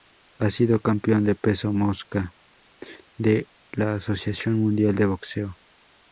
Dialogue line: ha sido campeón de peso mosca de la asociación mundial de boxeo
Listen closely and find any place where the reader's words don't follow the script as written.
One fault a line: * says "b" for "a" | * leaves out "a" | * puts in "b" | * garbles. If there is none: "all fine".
all fine